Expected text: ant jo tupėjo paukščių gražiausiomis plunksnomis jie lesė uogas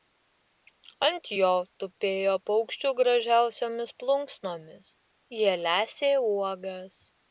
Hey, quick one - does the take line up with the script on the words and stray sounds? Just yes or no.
yes